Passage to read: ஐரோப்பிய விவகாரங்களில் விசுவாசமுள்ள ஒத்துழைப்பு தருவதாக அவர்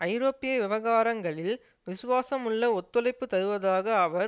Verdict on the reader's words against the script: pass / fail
pass